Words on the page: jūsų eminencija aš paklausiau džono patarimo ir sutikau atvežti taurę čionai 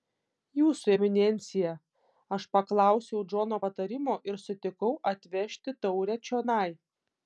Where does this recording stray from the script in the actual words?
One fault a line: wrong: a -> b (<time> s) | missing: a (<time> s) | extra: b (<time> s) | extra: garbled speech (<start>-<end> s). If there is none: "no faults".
no faults